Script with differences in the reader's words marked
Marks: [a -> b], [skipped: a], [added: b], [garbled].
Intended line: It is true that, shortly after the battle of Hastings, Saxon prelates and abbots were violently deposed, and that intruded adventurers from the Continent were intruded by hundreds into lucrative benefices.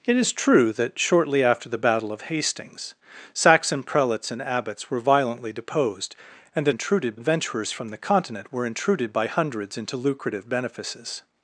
It is true that, shortly after the battle of Hastings, Saxon prelates and abbots were violently deposed, and that intruded adventurers from the Continent were intruded by hundreds into lucrative benefices.